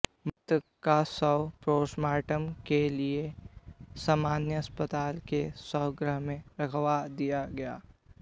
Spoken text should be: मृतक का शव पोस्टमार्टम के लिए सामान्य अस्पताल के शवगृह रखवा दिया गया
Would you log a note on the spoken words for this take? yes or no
yes